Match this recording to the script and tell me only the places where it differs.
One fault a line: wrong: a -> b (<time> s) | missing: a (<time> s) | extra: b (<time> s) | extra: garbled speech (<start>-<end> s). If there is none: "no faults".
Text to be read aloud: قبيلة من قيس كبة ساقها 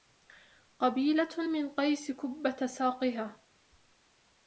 no faults